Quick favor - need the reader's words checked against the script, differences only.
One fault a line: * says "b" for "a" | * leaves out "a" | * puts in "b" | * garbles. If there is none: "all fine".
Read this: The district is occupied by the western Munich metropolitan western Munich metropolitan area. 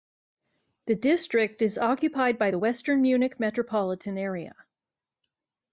* leaves out "western Munich metropolitan"